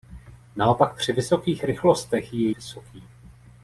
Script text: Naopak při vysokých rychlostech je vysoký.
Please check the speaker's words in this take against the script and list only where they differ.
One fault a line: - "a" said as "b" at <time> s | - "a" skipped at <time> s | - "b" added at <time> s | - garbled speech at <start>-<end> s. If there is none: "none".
none